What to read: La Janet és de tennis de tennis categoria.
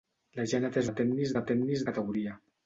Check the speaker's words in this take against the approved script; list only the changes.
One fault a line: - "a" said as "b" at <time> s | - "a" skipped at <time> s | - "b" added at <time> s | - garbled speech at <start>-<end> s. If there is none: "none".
none